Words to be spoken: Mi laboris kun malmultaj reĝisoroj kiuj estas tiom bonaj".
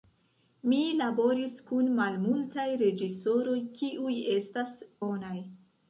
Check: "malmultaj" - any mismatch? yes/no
no